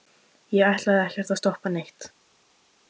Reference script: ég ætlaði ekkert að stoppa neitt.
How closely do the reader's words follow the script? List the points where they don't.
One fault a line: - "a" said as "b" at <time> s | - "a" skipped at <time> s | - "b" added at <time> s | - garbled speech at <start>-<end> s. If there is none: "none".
none